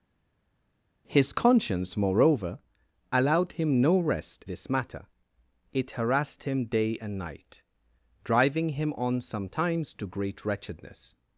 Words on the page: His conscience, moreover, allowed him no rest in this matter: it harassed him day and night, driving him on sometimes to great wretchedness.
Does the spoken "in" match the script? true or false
false